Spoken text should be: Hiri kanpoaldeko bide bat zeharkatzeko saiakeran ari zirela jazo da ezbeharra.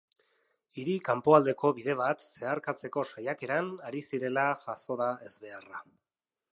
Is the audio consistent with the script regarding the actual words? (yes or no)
yes